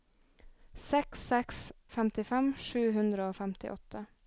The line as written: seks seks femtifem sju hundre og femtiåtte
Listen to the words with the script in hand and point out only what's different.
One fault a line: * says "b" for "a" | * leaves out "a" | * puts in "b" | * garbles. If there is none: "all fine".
all fine